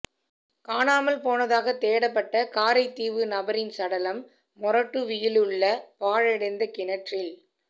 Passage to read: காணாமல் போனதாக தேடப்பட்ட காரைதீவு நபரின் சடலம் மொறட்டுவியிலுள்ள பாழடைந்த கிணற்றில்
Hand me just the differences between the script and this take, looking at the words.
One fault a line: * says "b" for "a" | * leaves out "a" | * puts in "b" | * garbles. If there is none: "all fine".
all fine